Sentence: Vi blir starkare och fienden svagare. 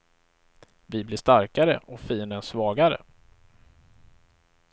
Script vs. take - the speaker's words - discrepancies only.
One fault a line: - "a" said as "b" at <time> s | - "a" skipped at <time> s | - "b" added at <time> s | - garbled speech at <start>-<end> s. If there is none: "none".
none